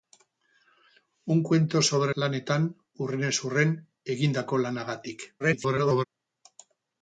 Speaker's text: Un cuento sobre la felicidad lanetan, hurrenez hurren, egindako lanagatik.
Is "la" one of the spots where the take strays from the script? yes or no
yes